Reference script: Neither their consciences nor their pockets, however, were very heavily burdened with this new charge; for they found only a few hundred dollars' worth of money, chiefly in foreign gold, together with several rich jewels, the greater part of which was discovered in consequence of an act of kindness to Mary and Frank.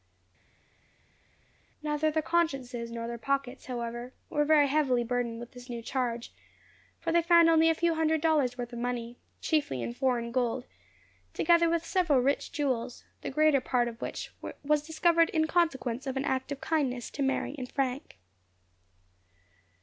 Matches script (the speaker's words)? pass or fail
pass